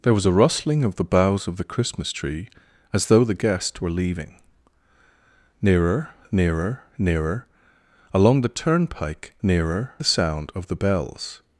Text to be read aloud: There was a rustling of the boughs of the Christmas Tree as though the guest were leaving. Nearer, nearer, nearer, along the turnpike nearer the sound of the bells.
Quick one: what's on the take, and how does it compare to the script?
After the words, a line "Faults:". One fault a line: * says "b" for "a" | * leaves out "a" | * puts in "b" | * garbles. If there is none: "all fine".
There was a rustling of the boughs of the Christmas Tree as though the guest were leaving. Nearer, nearer, nearer, along the turnpike nearer the sound of the bells.
Faults:
all fine